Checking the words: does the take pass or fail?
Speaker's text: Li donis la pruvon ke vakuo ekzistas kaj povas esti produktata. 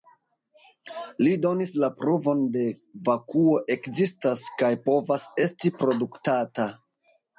pass